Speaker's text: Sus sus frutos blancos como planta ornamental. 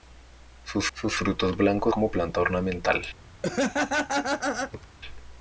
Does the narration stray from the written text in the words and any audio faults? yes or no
yes